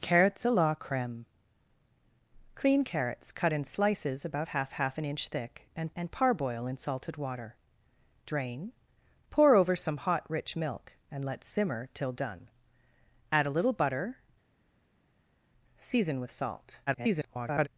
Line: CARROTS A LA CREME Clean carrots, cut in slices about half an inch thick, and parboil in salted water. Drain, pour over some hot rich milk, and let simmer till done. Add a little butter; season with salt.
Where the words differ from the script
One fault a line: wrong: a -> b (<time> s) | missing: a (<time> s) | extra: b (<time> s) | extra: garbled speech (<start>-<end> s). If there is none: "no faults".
extra: half (4.7 s)
extra: and (6.0 s)
extra: garbled speech (16.9-17.7 s)